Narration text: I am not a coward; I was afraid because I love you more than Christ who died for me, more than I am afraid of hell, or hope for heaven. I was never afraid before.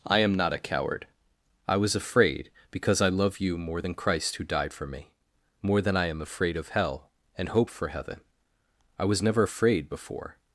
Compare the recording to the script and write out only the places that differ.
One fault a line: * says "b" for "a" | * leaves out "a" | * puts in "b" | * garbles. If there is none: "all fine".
* says "and" for "or"